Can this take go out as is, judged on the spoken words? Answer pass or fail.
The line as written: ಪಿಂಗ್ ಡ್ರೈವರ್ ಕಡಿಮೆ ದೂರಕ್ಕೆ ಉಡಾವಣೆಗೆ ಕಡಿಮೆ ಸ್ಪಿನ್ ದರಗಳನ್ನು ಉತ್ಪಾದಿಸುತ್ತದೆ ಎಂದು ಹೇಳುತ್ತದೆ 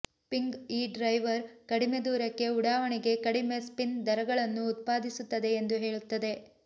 fail